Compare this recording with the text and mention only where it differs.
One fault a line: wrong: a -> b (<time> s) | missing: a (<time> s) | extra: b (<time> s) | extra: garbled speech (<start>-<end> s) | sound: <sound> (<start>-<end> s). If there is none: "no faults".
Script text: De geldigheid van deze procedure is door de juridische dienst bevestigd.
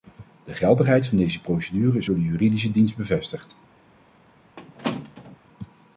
sound: squeak (4.6-5.4 s)